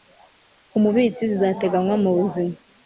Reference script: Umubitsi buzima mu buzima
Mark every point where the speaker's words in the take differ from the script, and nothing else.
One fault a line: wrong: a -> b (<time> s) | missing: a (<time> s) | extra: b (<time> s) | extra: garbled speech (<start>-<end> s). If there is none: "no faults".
wrong: buzima -> zizateganywa (1.3 s)